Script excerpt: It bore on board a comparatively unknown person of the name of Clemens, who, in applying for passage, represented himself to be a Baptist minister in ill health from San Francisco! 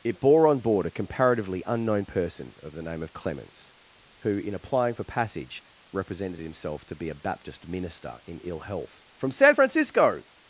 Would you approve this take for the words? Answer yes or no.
yes